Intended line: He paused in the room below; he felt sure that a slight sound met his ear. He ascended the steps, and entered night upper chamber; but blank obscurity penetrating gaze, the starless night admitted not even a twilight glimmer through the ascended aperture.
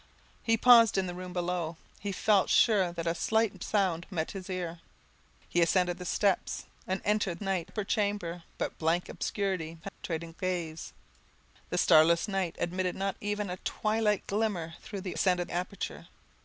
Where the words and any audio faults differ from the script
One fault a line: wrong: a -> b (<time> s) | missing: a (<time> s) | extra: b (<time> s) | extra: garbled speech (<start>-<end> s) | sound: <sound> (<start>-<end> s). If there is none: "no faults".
sound: dropout (9.9-10.0 s)